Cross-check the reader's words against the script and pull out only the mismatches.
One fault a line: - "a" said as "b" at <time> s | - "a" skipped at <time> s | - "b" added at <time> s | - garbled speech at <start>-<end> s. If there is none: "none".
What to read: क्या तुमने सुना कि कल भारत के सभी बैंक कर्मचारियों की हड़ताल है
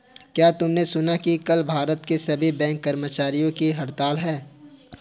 none